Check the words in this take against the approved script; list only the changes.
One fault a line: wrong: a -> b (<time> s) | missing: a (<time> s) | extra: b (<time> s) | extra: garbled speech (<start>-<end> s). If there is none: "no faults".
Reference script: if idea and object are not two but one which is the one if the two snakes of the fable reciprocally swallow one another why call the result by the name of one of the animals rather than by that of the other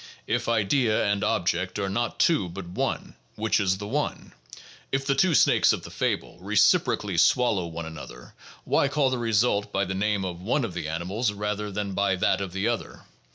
no faults